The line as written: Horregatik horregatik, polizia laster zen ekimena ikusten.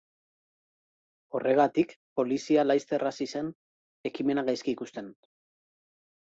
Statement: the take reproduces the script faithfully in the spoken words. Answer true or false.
false